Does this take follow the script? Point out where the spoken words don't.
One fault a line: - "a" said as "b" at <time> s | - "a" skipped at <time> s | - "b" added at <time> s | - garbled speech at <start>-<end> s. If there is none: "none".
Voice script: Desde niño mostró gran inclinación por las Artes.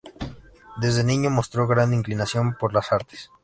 none